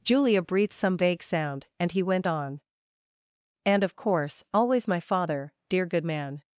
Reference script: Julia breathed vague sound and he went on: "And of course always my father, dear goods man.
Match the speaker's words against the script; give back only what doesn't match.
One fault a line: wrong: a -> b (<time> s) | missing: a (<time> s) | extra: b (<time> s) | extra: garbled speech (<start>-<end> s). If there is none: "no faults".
extra: some (0.7 s)
wrong: goods -> good (5.9 s)